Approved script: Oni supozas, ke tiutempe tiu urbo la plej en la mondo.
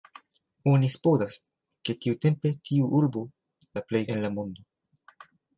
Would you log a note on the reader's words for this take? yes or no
no